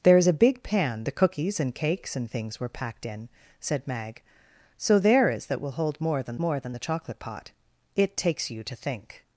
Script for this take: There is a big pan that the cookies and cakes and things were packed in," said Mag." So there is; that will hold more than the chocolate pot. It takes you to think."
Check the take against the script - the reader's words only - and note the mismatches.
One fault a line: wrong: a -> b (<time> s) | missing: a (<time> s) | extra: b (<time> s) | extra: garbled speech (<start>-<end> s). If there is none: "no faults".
missing: that (1.0 s)
extra: more than (6.4 s)